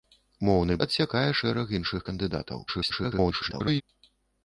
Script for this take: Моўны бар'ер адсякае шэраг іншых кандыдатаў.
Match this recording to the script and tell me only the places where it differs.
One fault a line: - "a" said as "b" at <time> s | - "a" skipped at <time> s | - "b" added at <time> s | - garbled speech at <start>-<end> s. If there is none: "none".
- "бар'ер" skipped at 0.8 s
- garbled speech at 2.7-3.8 s